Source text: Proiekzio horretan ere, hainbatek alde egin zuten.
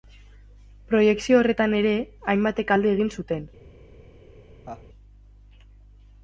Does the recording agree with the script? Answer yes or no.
yes